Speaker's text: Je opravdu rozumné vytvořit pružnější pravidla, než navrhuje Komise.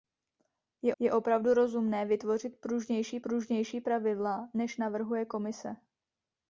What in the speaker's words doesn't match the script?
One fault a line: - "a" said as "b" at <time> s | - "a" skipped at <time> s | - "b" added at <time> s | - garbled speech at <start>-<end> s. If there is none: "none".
- "je" added at 1.0 s
- "pružnější" added at 3.2 s